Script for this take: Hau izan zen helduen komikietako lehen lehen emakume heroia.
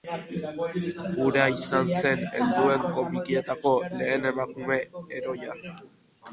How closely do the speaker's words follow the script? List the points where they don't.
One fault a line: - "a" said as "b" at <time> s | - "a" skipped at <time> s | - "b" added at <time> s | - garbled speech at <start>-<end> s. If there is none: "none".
- "Hau" said as "Hura" at 1.2 s
- "lehen" skipped at 4.3 s